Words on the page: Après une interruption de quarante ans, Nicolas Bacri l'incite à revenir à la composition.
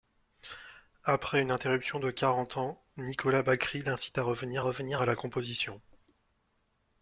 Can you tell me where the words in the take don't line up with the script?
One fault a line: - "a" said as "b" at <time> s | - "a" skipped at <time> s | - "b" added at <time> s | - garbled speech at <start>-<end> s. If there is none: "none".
- "revenir" added at 4.6 s